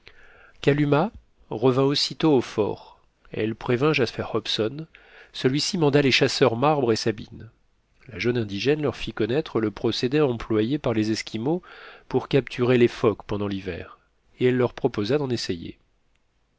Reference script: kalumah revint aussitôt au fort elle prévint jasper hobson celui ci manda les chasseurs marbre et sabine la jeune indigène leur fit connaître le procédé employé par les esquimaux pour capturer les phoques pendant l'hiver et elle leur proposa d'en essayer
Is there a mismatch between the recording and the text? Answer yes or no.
no